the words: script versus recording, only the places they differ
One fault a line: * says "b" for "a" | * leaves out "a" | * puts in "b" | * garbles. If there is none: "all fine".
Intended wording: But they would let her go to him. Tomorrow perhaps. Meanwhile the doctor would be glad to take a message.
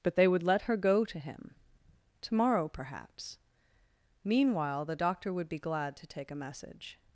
all fine